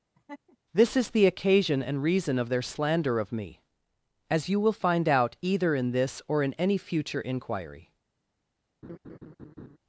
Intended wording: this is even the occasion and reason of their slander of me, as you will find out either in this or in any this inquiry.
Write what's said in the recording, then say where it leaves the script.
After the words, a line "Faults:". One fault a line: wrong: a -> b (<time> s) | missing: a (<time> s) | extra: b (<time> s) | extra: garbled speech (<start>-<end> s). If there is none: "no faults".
this is the occasion and reason of their slander of me, as you will find out either in this or in any future inquiry.
Faults:
missing: even (1.1 s)
wrong: this -> future (6.8 s)